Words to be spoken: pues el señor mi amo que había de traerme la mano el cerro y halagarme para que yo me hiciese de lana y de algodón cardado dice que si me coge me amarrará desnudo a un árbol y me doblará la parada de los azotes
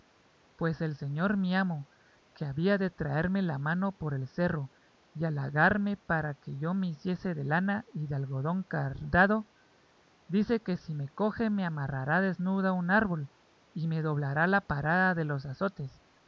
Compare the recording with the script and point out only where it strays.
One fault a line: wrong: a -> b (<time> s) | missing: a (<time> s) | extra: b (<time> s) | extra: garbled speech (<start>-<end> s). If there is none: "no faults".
extra: por (3.9 s)